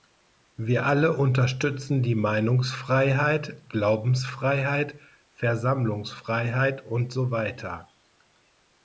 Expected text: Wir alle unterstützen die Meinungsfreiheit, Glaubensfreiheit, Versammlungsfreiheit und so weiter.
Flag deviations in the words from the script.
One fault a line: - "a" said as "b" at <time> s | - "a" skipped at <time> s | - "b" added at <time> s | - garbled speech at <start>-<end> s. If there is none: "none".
none